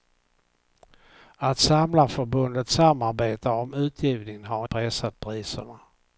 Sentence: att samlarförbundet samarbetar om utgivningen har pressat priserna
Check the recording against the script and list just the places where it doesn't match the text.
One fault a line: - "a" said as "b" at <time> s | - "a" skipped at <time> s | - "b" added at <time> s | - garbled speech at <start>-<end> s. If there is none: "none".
none